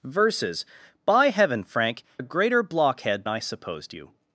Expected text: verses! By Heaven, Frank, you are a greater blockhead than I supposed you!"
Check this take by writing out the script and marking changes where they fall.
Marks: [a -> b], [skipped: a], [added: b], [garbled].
verses! By Heaven, Frank, [skipped: you are] a greater blockhead [skipped: than] I supposed you!"